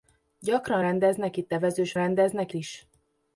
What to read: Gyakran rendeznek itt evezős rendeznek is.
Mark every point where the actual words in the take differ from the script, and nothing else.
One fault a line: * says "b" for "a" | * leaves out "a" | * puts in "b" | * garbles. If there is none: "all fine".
all fine